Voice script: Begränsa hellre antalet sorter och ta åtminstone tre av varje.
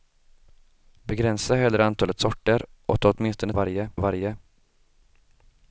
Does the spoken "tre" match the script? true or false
false